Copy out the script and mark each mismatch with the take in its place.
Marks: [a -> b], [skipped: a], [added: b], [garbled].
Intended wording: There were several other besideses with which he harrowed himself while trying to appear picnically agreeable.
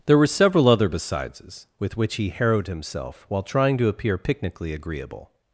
There were several other besideses with which he harrowed himself while trying to appear picnically agreeable.